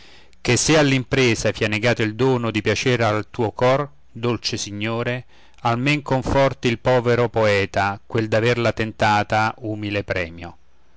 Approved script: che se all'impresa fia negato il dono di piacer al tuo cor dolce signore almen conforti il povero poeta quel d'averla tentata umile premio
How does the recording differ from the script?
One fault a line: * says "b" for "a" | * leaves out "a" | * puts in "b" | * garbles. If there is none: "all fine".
all fine